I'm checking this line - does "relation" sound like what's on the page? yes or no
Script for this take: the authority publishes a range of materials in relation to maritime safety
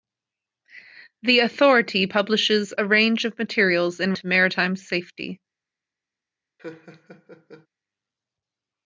no